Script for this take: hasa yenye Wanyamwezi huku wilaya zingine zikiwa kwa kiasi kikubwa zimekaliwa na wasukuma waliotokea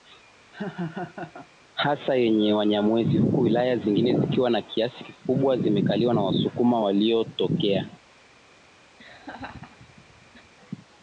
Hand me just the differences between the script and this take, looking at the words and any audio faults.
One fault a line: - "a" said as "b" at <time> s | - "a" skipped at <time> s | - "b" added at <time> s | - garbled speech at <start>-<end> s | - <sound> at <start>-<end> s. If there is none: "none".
- laugh at 0.5-1.5 s
- laugh at 9.0-10.5 s